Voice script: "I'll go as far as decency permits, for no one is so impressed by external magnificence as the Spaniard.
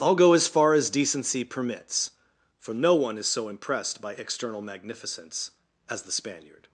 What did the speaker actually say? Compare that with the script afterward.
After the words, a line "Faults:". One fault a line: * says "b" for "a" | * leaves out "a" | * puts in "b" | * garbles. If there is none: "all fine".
"I'll go as far as decency permits, for no one is so impressed by external magnificence as the Spaniard.
Faults:
all fine